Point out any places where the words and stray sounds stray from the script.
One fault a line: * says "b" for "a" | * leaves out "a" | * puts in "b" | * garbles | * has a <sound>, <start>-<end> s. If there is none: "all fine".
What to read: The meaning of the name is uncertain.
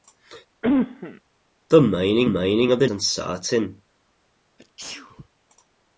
* has a cough, 0.6-1.2 s
* puts in "meaning"
* leaves out "name is"
* has a sneeze, 4.6-5.3 s